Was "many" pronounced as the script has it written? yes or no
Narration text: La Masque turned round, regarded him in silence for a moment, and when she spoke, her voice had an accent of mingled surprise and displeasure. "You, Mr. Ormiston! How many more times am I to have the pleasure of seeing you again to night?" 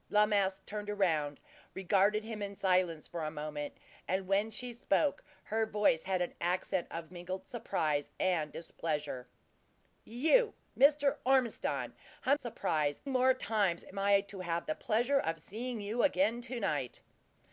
no